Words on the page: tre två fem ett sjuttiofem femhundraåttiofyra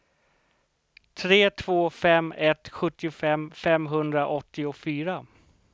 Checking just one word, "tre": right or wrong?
right